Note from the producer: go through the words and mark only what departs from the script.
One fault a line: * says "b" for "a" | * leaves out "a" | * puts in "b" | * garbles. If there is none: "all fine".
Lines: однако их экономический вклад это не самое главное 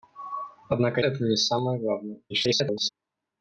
* leaves out "их экономический вклад"
* garbles